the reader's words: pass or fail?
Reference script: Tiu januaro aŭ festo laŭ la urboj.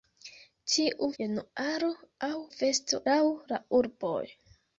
pass